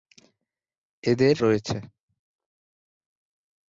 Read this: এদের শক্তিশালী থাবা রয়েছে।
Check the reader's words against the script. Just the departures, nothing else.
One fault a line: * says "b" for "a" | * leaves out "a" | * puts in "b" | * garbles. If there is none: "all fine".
* leaves out "শক্তিশালী থাবা"